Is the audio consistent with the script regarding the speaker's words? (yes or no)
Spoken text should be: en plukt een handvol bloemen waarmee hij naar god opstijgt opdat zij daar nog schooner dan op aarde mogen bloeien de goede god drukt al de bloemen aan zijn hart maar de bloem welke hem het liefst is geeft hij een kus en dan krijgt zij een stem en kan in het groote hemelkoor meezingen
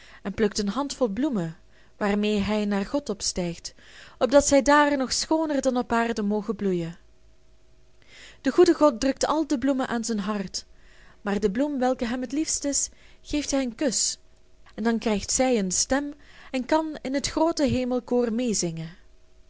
yes